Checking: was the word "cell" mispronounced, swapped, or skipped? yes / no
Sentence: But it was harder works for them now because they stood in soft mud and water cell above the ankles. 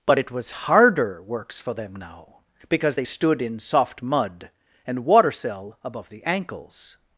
no